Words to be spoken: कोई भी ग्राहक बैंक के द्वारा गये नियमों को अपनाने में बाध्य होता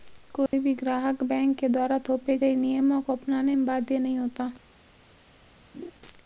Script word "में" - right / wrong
right